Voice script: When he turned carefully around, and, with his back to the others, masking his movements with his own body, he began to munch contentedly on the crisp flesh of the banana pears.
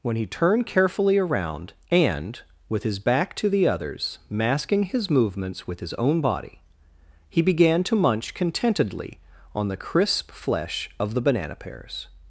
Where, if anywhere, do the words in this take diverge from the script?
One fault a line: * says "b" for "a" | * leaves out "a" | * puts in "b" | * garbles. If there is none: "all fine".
all fine